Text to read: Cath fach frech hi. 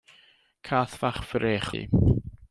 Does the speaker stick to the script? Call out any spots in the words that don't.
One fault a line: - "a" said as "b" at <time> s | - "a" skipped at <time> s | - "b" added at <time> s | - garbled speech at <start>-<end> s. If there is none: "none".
none